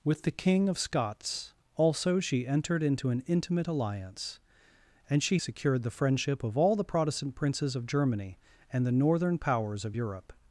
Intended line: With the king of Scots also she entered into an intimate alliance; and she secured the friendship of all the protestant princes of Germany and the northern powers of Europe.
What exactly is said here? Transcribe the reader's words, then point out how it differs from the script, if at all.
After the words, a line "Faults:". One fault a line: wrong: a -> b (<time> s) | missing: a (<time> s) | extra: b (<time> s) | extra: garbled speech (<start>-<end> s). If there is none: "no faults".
With the king of Scots also she entered into an intimate alliance; and she secured the friendship of all the protestant princes of Germany and the northern powers of Europe.
Faults:
no faults